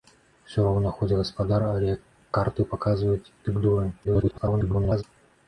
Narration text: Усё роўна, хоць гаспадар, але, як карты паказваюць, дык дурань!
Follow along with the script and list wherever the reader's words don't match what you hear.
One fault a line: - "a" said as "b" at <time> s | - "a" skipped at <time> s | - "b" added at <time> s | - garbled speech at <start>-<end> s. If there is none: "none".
- garbled speech at 4.0-5.0 s